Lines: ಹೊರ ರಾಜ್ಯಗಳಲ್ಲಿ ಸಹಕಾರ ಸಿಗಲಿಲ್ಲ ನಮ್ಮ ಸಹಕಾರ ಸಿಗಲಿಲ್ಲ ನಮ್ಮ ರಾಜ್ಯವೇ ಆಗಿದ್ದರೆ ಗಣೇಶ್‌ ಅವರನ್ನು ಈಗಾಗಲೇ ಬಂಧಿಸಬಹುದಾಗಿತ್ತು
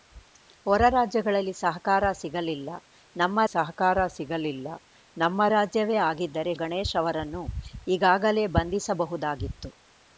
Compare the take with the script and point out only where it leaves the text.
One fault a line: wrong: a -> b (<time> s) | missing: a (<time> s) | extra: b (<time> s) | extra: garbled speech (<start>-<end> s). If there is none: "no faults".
no faults